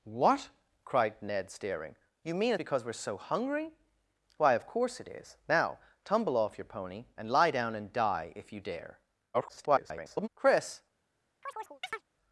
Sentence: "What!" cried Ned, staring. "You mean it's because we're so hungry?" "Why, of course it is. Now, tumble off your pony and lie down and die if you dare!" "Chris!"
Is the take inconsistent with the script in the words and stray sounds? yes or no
yes